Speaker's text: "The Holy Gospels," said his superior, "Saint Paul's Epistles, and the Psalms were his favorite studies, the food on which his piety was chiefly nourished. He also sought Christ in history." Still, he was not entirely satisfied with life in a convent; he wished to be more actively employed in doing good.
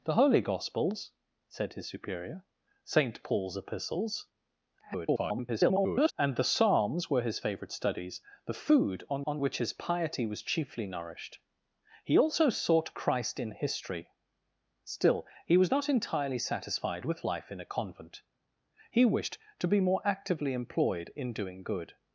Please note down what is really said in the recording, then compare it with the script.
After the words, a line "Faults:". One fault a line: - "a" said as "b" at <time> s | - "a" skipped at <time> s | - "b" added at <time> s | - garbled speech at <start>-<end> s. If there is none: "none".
"The Holy Gospels," said his superior, "Saint Paul's Epistles, [garbled] and the Psalms were his favorite studies, the food on on which his piety was chiefly nourished. He also sought Christ in history." Still, he was not entirely satisfied with life in a convent; he wished to be more actively employed in doing good.
Faults:
- garbled speech at 4.8-6.1 s
- "on" added at 9.3 s